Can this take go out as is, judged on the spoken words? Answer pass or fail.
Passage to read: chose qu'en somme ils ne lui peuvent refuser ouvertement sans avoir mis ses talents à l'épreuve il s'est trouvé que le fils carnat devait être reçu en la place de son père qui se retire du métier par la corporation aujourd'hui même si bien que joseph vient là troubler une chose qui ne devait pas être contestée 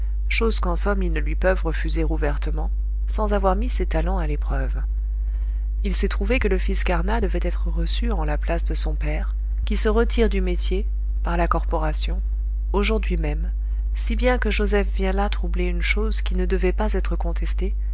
pass